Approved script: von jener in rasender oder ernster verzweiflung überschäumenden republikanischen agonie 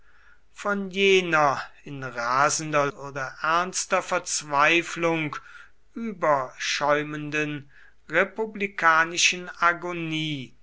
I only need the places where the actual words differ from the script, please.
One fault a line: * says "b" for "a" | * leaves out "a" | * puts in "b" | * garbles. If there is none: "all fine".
all fine